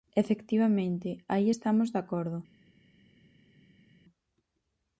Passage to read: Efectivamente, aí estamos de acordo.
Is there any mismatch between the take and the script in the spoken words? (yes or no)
no